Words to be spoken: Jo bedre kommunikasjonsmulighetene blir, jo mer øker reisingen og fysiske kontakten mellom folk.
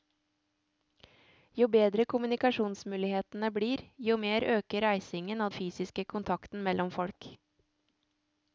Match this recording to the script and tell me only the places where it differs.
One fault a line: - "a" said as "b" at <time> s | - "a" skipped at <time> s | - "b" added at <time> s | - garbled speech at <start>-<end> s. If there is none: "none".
none